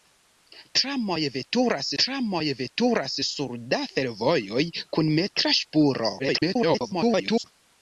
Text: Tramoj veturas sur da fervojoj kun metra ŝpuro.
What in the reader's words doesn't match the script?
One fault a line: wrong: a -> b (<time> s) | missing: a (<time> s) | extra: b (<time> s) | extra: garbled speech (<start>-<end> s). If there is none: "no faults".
extra: tramoj veturas (2.0 s)
extra: garbled speech (6.2-7.4 s)